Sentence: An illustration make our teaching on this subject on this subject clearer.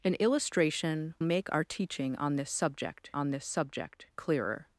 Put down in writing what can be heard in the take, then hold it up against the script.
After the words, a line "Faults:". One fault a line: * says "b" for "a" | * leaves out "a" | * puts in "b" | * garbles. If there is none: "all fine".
An illustration make our teaching on this subject on this subject clearer.
Faults:
all fine